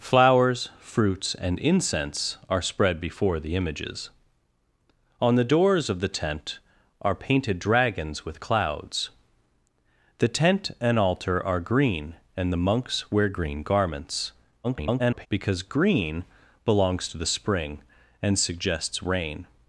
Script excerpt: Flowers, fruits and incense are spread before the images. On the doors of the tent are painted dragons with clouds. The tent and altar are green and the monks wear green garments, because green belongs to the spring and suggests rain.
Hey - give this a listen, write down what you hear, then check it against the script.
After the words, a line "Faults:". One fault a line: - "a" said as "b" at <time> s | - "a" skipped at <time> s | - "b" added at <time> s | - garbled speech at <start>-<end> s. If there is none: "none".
Flowers, fruits and incense are spread before the images. On the doors of the tent are painted dragons with clouds. The tent and altar are green and the monks wear green garments, [garbled] because green belongs to the spring and suggests rain.
Faults:
- garbled speech at 14.6-15.3 s